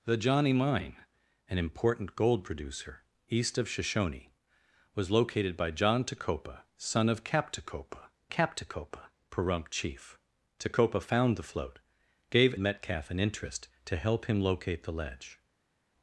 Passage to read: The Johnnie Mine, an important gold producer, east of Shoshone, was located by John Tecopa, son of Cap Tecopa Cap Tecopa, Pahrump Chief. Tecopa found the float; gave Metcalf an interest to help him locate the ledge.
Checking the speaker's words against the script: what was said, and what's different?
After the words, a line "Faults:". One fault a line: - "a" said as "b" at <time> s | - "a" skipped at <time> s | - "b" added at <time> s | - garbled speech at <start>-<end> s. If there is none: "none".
The Johnnie Mine, an important gold producer, east of Shoshone, was located by John Tecopa, son of Cap Tecopa Cap Tecopa, Pahrump Chief. Tecopa found the float; gave Metcalf an interest to help him locate the ledge.
Faults:
none